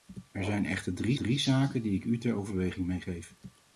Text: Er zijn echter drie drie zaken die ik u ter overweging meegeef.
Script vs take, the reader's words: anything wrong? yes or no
no